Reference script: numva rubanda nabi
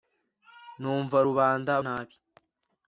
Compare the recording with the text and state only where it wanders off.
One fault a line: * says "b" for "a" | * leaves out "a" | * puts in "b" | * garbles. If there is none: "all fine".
all fine